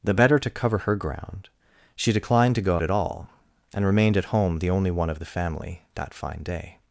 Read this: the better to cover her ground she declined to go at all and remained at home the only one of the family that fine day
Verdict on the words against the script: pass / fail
pass